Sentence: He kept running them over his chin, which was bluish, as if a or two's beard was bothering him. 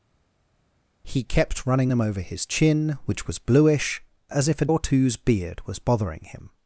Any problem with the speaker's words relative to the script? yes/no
no